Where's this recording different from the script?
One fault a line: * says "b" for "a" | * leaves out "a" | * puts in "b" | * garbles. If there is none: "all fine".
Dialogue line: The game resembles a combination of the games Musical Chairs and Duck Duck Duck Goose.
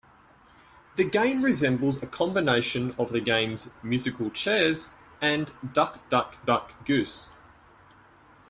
all fine